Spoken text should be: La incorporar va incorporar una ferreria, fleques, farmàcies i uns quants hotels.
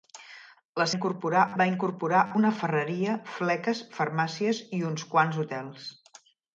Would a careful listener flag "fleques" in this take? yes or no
no